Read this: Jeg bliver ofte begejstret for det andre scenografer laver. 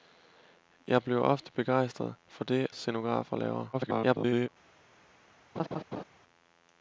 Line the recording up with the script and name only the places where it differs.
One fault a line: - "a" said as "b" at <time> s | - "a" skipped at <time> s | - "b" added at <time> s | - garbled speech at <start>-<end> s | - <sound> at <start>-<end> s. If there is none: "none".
- "andre" skipped at 2.7 s
- garbled speech at 3.7-4.5 s
- laugh at 5.6-6.0 s